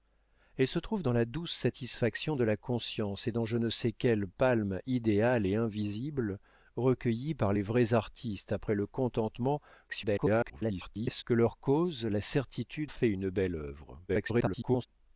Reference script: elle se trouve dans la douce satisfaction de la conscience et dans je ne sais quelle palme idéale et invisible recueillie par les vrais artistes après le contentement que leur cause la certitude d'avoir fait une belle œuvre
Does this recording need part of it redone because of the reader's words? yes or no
yes